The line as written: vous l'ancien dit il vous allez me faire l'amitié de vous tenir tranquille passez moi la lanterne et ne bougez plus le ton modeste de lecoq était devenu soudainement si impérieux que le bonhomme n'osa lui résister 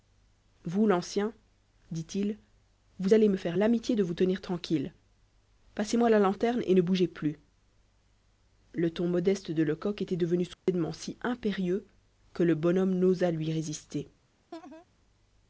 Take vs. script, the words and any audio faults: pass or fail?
fail